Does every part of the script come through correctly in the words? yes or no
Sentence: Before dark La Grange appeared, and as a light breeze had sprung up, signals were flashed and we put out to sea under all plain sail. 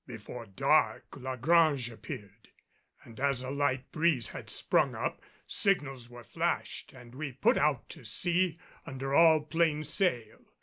yes